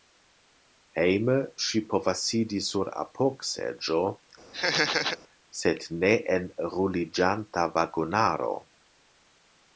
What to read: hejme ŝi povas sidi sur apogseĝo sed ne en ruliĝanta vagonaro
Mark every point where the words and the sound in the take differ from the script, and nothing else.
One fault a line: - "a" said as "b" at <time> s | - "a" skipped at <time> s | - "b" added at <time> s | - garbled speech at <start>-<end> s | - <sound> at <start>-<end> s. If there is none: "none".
- laugh at 4.5-5.2 s